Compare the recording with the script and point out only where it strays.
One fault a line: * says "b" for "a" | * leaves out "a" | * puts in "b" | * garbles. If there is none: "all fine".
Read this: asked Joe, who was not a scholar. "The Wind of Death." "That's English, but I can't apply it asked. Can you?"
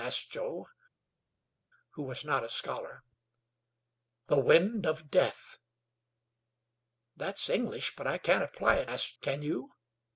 all fine